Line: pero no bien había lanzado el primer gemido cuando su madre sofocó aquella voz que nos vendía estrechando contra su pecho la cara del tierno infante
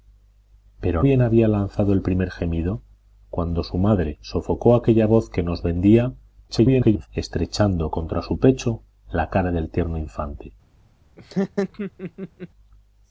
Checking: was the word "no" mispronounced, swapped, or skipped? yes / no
yes